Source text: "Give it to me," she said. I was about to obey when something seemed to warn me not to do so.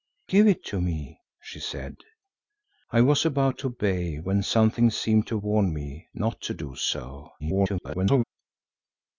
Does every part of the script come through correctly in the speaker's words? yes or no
no